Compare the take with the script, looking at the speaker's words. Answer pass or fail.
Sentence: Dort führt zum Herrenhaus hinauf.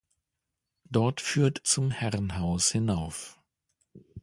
pass